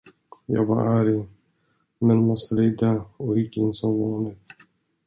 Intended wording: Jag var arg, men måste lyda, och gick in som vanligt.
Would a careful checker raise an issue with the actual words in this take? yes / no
no